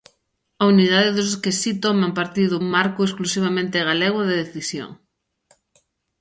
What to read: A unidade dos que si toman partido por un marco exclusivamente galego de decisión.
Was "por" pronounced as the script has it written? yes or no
no